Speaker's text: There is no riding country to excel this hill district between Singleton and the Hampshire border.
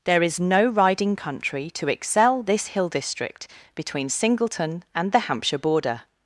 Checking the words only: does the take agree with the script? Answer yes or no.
yes